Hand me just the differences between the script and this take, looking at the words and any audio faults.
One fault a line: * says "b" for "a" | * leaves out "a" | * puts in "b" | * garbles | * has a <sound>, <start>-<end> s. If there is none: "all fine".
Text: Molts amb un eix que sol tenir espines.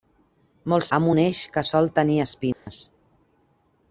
* has a dropout, 2.5-2.7 s